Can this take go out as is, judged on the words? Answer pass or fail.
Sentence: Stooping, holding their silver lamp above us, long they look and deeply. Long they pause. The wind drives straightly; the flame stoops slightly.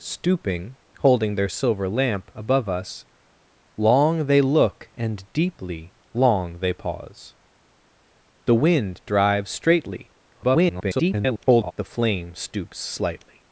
fail